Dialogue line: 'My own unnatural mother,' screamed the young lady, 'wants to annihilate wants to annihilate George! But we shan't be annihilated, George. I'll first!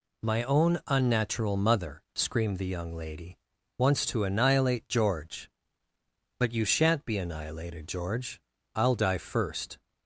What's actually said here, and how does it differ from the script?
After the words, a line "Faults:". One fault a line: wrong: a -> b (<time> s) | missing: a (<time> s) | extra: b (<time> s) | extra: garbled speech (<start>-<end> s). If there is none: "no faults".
'My own unnatural mother,' screamed the young lady, 'wants to annihilate George! But you shan't be annihilated, George. I'll die first!
Faults:
missing: wants to annihilate (4.9 s)
wrong: we -> you (6.5 s)
extra: die (8.9 s)